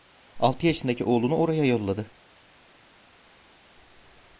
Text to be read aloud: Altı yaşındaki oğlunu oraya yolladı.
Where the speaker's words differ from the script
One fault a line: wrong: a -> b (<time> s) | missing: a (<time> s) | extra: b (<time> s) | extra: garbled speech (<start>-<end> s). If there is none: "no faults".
no faults